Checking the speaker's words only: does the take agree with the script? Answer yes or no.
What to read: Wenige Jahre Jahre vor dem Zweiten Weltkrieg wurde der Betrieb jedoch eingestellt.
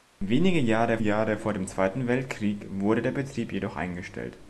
yes